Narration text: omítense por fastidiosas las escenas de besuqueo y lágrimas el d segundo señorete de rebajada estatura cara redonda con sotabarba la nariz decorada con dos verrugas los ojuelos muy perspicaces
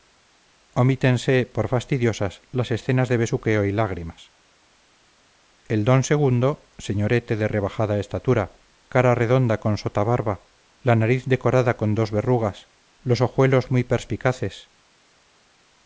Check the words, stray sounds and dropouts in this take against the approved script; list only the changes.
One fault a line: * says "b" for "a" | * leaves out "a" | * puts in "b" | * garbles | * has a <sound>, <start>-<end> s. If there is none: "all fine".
all fine